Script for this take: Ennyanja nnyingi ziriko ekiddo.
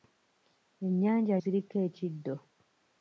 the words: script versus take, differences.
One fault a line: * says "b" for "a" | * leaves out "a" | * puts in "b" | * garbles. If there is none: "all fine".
* leaves out "nnyingi"